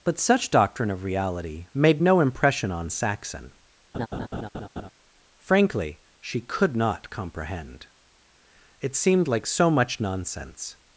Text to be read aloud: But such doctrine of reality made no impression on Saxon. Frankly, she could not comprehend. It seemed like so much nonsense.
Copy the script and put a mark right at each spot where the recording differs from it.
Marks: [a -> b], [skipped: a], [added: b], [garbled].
But such doctrine of reality made no impression on Saxon. Frankly, she could not comprehend. It seemed like so much nonsense.